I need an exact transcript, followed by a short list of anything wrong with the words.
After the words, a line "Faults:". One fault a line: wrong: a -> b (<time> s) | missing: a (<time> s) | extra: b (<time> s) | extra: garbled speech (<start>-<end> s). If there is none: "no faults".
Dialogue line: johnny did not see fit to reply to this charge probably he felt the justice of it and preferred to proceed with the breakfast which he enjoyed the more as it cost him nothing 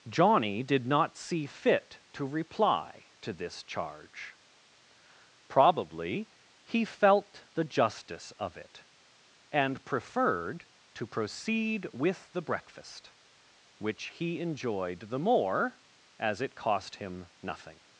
johnny did not see fit to reply to this charge probably he felt the justice of it and preferred to proceed with the breakfast which he enjoyed the more as it cost him nothing
Faults:
no faults